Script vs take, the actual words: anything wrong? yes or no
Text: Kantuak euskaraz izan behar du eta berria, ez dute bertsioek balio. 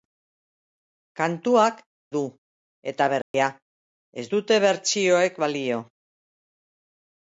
yes